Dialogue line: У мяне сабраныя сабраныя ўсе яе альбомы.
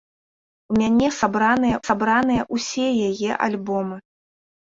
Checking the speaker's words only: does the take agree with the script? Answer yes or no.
yes